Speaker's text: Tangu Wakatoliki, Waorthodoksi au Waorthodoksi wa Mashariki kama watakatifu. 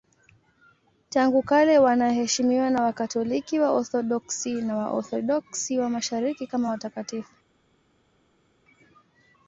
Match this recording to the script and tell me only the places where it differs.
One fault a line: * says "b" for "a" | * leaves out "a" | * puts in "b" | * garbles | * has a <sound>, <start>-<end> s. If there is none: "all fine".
* puts in "kale wanaheshimiwa na"
* says "na" for "au"